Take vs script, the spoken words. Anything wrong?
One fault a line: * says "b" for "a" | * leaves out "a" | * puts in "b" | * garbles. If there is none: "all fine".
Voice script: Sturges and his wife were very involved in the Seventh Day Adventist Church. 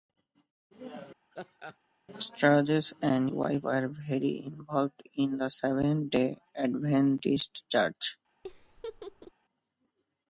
* leaves out "his"